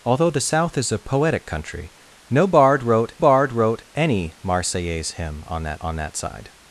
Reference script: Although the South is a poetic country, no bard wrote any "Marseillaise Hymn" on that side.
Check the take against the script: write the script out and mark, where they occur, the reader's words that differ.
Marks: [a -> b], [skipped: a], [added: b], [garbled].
Although the South is a poetic country, no bard wrote [added: bard wrote] any "Marseillaise Hymn" on that [added: on that] side.